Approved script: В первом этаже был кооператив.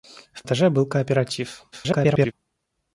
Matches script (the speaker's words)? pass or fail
fail